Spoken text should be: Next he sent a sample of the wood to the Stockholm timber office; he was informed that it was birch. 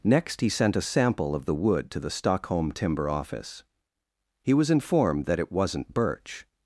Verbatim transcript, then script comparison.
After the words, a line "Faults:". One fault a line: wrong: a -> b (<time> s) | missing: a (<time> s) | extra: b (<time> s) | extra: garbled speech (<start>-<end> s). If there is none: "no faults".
Next he sent a sample of the wood to the Stockholm timber office; he was informed that it wasn't birch.
Faults:
wrong: was -> wasn't (5.5 s)